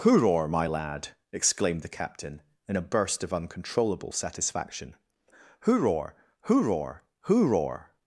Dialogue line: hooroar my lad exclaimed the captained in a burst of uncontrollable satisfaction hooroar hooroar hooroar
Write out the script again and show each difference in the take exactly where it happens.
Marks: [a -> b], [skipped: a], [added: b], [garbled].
hooroar my lad exclaimed the [captained -> captain] in a burst of uncontrollable satisfaction hooroar hooroar hooroar